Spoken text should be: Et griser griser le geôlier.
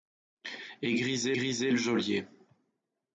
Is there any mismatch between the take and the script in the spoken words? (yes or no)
no